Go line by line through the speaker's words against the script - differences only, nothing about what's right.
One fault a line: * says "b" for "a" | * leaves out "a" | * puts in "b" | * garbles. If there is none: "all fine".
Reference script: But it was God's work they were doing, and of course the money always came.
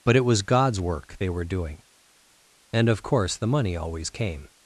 all fine